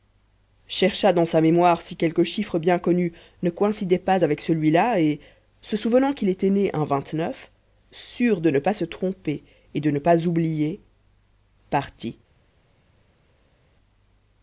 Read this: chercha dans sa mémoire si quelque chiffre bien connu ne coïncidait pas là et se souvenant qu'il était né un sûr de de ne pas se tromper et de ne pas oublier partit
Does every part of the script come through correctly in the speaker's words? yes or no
no